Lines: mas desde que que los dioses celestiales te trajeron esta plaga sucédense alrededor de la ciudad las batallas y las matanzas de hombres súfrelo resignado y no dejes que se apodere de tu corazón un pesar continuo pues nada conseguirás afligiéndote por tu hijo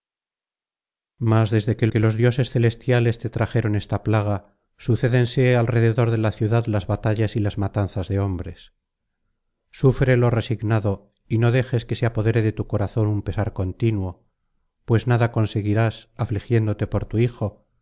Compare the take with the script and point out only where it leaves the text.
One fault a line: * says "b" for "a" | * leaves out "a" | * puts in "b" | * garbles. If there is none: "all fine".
all fine